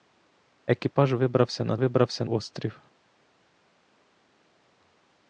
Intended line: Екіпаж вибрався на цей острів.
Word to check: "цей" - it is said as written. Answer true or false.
false